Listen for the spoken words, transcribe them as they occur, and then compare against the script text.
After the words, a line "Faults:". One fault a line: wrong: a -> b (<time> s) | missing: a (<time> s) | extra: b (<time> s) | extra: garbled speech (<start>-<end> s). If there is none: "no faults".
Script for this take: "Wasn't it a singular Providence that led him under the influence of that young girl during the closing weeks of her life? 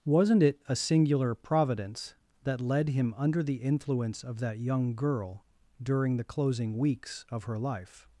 "Wasn't it a singular Providence that led him under the influence of that young girl during the closing weeks of her life?
Faults:
no faults